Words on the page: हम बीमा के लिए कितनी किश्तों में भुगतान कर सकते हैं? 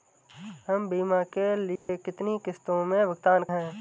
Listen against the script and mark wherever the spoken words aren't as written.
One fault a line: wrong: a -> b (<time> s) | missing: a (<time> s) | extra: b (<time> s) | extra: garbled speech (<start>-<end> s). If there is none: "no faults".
missing: कर सकते (3.4 s)